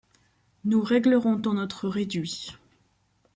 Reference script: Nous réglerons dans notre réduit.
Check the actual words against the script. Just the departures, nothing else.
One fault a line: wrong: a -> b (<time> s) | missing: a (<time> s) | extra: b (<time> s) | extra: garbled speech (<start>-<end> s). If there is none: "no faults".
no faults